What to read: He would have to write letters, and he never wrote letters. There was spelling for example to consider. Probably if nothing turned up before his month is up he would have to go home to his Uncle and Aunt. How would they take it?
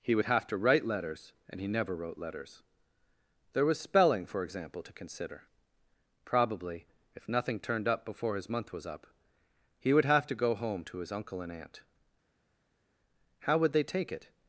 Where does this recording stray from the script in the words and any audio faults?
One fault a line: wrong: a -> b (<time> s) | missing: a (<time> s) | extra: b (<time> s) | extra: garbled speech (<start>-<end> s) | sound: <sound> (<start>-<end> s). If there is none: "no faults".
wrong: is -> was (8.7 s)